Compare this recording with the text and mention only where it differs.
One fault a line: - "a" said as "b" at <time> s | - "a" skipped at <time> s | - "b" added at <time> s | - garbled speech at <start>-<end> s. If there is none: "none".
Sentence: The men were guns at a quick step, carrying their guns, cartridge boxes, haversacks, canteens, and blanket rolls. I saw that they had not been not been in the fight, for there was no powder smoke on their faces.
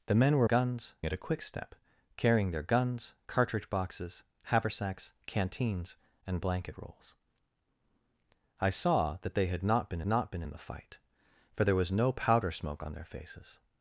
none